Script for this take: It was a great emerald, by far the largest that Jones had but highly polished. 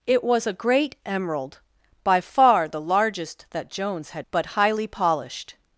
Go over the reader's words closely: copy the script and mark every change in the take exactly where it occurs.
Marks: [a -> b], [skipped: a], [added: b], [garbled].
It was a great emerald, by far the largest that Jones had but highly polished.